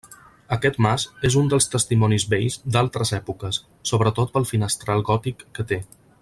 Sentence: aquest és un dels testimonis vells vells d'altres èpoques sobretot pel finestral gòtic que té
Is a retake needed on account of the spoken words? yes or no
yes